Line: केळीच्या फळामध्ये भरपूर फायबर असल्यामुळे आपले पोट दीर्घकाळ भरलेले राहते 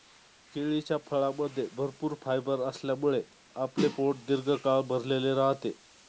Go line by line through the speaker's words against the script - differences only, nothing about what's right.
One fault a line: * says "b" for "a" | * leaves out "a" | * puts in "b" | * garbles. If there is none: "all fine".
all fine